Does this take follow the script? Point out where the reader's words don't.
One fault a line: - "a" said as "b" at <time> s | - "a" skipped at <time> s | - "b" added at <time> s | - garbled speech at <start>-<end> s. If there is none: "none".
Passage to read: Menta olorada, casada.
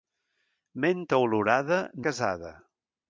none